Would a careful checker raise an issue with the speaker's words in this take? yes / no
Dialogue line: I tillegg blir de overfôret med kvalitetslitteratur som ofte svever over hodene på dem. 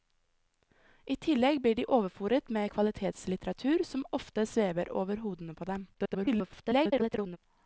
yes